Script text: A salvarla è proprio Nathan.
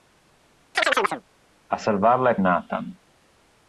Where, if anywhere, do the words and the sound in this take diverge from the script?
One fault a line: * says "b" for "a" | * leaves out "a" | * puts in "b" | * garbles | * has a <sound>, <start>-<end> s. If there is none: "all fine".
* has a chirp, 0.7-1.2 s
* leaves out "proprio"